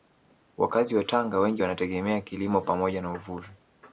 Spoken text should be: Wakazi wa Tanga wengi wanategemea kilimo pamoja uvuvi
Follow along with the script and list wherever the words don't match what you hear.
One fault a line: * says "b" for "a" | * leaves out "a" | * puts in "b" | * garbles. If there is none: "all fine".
* puts in "na"